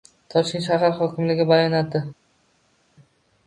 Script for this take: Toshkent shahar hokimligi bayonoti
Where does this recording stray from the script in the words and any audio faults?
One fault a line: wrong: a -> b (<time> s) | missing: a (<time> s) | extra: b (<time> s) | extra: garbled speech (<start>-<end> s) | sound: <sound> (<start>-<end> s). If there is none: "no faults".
no faults